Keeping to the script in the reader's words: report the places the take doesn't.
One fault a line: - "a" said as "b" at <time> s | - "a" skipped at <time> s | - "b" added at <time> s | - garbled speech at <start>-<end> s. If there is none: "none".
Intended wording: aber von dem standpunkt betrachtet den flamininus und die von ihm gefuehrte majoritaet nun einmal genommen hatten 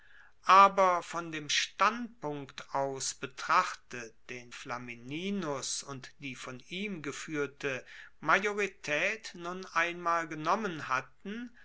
- "aus" added at 2.7 s